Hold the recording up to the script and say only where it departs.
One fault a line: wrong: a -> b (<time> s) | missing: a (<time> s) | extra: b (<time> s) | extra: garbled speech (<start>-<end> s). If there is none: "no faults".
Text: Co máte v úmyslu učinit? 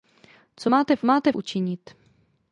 wrong: úmyslu -> máte (1.0 s)